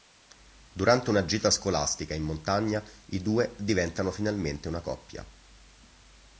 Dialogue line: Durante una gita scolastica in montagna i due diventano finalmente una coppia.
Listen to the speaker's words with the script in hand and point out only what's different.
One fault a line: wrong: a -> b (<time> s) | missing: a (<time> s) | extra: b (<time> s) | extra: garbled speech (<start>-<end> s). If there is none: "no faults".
no faults